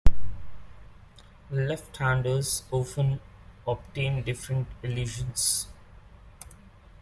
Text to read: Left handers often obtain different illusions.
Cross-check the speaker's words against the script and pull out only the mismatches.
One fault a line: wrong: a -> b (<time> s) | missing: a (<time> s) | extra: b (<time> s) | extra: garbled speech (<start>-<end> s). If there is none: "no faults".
no faults